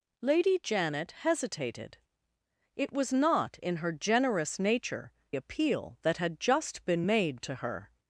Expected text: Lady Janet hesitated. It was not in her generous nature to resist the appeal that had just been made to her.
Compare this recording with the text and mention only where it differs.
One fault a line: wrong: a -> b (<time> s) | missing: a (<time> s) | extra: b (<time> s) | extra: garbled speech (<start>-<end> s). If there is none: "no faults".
missing: to resist the (5.1 s)